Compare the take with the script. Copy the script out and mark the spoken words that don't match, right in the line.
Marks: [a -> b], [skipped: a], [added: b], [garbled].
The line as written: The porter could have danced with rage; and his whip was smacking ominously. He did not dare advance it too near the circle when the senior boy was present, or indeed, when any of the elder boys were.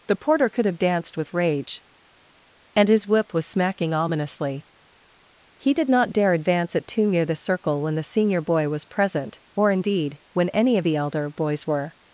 The porter could have danced with rage; and his whip was smacking ominously. He did not dare advance it too near the circle when the senior boy was present, or indeed, when any of the elder boys were.